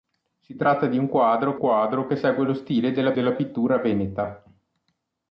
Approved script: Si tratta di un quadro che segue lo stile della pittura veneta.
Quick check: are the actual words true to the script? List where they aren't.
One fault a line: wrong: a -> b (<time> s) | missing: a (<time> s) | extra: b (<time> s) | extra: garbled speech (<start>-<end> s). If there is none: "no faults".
extra: quadro (1.6 s)
extra: della (3.1 s)